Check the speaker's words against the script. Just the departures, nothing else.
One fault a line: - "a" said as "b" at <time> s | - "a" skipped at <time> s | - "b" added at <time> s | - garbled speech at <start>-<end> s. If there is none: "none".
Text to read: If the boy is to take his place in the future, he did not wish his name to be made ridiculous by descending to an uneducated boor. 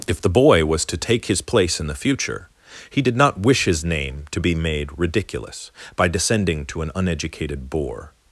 - "is" said as "was" at 0.7 s